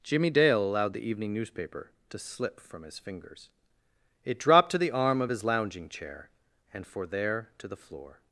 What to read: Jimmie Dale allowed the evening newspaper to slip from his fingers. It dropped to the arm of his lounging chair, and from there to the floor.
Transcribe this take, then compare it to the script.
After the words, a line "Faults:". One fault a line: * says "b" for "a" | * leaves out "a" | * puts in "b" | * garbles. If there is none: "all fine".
Jimmie Dale allowed the evening newspaper to slip from his fingers. It dropped to the arm of his lounging chair, and for there to the floor.
Faults:
* says "for" for "from"